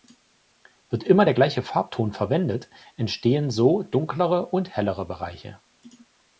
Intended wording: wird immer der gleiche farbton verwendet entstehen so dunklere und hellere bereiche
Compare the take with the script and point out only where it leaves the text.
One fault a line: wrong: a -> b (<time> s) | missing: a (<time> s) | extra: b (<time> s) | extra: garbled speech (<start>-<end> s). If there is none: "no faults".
no faults